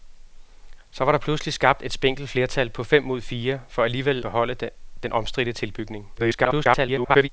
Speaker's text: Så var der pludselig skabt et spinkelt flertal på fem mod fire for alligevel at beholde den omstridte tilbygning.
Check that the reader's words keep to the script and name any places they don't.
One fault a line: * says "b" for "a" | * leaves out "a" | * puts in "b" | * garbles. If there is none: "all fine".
* leaves out "at"
* garbles